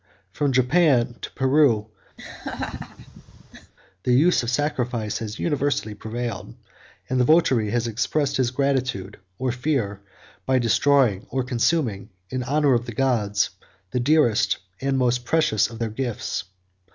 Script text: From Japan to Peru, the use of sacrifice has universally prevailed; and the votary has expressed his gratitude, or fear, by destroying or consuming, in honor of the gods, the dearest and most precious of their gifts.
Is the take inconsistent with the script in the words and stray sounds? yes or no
yes